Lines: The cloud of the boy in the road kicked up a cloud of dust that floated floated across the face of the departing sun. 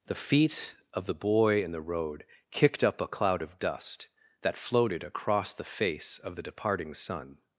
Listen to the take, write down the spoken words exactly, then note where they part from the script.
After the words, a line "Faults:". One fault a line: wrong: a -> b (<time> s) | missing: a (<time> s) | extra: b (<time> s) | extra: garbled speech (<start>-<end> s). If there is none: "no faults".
The feet of the boy in the road kicked up a cloud of dust that floated across the face of the departing sun.
Faults:
wrong: cloud -> feet (0.1 s)
missing: floated (5.0 s)